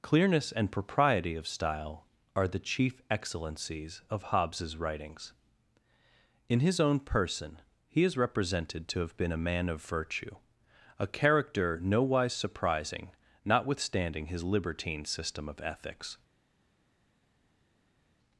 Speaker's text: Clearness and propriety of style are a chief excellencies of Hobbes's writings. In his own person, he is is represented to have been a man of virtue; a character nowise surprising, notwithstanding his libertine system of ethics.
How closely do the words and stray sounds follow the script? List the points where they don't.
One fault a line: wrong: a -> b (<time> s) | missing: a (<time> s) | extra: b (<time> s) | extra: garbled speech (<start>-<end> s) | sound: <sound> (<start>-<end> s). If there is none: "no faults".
wrong: a -> the (2.5 s)
missing: is (8.2 s)